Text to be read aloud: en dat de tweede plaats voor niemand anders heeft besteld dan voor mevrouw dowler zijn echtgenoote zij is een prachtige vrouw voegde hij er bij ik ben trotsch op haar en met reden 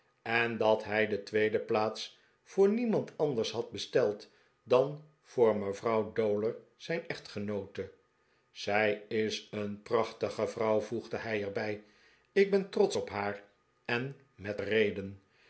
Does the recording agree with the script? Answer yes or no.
no